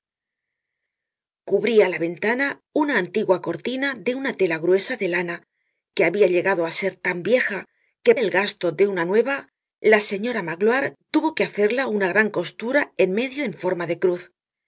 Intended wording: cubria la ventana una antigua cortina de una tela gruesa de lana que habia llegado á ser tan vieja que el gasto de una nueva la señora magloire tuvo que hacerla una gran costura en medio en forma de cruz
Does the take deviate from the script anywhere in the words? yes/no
no